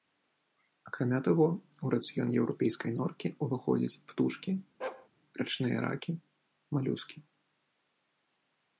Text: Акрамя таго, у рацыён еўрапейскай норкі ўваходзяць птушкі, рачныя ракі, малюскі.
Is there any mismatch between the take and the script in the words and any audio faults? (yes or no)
yes